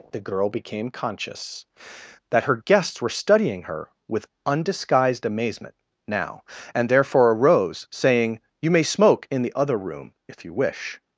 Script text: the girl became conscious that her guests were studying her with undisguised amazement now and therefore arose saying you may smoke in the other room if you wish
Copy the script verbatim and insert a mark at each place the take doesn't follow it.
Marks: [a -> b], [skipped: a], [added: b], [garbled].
the girl became conscious that her guests were studying her with undisguised amazement now and therefore arose saying you may smoke in the other room if you wish